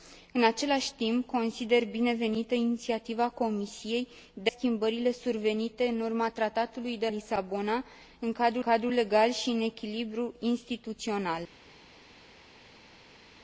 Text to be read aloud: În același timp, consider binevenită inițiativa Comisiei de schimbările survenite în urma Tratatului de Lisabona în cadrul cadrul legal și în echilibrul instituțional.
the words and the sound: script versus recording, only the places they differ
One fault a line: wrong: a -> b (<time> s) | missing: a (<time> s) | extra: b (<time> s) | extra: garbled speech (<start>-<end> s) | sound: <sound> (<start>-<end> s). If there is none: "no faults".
no faults